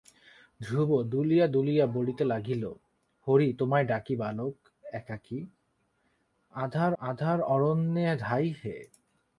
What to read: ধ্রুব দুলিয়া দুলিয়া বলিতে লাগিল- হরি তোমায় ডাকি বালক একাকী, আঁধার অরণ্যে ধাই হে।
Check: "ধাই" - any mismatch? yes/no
no